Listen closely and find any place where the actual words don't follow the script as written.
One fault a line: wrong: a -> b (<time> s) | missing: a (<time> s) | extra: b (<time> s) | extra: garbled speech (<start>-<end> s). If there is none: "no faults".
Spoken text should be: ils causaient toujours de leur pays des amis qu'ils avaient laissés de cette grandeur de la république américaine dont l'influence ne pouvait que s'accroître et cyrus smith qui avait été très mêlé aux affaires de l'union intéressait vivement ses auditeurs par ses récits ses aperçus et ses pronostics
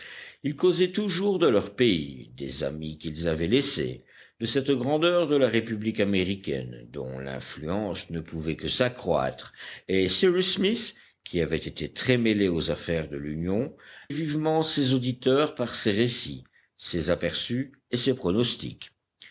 missing: intéressait (13.8 s)